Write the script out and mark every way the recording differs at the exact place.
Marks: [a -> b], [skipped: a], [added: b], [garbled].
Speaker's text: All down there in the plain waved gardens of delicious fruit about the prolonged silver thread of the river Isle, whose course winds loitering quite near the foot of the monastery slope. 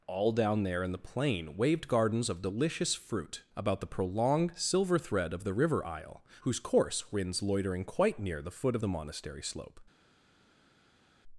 All down there in the plain waved gardens of delicious fruit about the prolonged silver thread of the river Isle, whose course winds loitering quite near the foot of the monastery slope.